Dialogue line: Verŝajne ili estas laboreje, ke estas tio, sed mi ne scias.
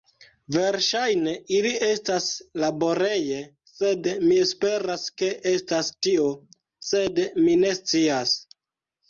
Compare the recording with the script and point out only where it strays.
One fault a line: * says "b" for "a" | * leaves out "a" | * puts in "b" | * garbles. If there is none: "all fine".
* puts in "sed mi esperas"